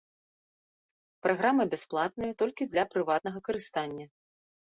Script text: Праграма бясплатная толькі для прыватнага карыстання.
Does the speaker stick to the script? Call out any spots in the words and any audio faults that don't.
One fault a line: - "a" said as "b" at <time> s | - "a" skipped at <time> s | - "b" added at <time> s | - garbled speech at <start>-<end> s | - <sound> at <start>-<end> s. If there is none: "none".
none